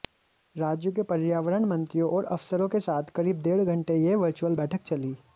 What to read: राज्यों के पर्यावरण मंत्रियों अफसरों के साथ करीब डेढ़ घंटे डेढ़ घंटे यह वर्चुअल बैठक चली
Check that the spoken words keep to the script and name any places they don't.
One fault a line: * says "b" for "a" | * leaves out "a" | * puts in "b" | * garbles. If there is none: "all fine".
* puts in "और"
* leaves out "डेढ़ घंटे"